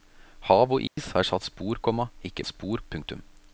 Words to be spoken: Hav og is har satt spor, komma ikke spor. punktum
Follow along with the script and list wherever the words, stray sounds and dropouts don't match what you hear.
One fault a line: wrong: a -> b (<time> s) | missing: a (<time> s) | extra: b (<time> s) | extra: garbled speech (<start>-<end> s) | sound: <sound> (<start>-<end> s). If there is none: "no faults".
sound: dropout (0.9-1.0 s)